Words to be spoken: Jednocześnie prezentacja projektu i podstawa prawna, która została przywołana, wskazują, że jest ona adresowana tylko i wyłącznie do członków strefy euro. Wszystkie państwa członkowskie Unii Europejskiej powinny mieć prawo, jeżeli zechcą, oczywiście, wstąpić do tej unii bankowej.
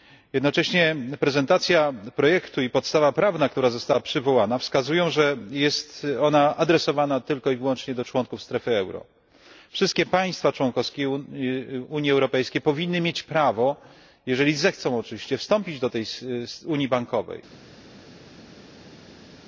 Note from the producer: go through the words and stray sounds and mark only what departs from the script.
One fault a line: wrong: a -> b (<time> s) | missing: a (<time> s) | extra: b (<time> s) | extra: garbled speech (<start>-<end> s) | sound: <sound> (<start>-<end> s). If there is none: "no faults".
no faults